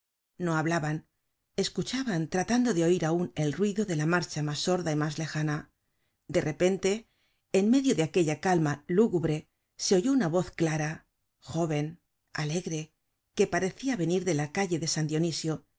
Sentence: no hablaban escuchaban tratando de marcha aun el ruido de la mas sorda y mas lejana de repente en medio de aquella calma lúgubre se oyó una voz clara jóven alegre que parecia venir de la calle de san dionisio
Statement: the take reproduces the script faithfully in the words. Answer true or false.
false